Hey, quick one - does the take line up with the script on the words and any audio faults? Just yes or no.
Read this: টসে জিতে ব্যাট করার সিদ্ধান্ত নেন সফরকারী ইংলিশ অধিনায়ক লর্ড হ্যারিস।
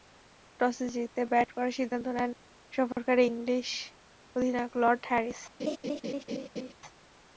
no